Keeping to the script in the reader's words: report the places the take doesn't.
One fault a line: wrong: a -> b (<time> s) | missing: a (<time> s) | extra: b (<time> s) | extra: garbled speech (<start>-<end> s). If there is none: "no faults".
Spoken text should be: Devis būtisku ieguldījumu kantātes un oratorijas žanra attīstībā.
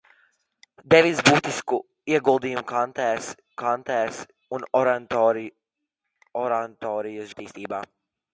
extra: kantātes (3.6 s)
missing: žanra (7.3 s)